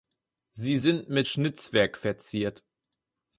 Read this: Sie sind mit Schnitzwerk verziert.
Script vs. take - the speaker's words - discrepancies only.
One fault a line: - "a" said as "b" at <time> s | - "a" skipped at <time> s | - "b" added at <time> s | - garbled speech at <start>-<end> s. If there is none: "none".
none